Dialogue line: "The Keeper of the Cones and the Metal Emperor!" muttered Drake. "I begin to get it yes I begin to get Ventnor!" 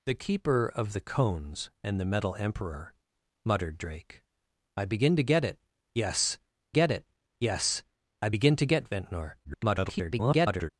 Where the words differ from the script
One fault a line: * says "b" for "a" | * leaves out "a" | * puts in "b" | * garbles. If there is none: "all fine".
* puts in "get it yes"
* garbles